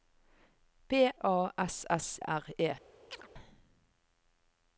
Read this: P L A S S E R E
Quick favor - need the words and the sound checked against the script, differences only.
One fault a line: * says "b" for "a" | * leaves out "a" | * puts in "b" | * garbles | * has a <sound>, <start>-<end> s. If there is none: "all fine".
* leaves out "L"
* leaves out "E"
* has a chirp, 3.1-3.3 s